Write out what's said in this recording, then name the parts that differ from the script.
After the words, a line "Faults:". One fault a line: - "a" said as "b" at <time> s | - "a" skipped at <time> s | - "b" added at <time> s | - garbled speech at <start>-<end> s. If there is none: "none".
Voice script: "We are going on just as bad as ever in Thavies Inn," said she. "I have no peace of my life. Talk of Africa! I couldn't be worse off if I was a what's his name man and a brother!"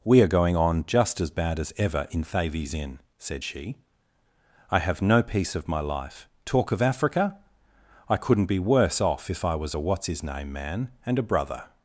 "We are going on just as bad as ever in Thavies Inn," said she. "I have no peace of my life. Talk of Africa! I couldn't be worse off if I was a what's his name man and a brother!"
Faults:
none